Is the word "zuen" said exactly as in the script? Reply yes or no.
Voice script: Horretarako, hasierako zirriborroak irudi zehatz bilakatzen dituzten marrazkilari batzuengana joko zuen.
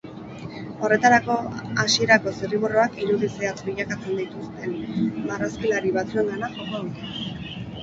no